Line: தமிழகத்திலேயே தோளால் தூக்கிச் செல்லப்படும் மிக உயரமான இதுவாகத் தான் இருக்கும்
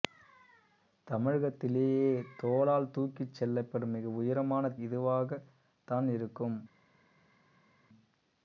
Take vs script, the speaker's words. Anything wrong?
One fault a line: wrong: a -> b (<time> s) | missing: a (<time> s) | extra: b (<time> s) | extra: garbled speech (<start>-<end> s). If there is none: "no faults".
no faults